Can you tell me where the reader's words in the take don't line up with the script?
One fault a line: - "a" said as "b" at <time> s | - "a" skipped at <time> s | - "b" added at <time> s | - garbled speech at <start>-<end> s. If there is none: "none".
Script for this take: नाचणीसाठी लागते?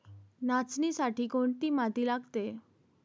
- "कोणती माती" added at 1.2 s